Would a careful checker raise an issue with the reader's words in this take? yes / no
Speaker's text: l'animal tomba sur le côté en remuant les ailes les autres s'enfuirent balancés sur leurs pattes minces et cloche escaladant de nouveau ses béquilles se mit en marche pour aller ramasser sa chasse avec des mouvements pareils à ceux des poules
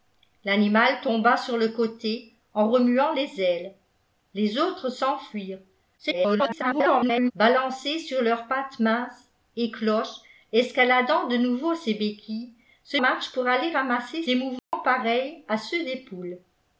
yes